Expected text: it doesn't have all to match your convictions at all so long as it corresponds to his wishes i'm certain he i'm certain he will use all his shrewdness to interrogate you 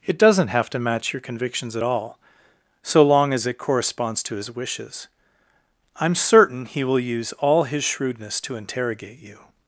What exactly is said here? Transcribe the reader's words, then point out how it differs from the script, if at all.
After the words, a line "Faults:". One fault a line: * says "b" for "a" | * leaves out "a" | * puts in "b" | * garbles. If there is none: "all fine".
it doesn't have to match your convictions at all so long as it corresponds to his wishes i'm certain he will use all his shrewdness to interrogate you
Faults:
* leaves out "all"
* leaves out "i'm certain he"